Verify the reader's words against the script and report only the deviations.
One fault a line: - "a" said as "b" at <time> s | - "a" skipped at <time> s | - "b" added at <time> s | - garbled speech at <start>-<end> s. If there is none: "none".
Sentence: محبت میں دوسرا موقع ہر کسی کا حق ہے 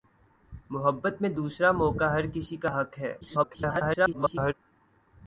- garbled speech at 3.2-4.5 s